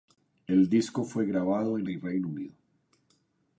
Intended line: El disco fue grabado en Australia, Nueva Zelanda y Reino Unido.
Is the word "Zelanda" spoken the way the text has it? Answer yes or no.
no